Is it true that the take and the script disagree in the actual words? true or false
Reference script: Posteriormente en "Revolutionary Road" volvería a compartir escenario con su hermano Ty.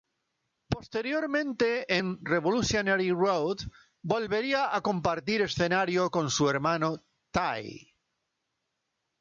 false